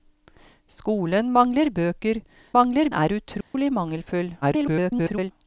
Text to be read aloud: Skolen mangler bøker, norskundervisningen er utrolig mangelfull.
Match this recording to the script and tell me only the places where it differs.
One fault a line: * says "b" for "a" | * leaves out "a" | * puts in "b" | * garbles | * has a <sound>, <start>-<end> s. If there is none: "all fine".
* says "mangler" for "norskundervisningen"
* has a dropout, 3.4-3.5 s
* garbles